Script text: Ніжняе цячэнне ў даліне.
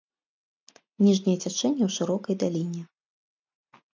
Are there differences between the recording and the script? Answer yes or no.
yes